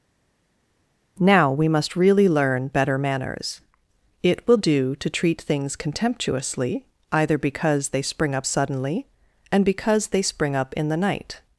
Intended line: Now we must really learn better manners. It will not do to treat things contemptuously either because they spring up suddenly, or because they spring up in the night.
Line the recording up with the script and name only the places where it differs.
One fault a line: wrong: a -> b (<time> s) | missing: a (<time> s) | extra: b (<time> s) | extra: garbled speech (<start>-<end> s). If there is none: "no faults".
missing: not (4.6 s)
wrong: or -> and (9.5 s)